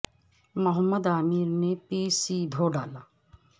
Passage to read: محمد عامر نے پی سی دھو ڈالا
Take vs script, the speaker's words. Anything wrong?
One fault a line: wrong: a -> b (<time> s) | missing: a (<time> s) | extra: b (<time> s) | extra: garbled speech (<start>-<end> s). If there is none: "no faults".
no faults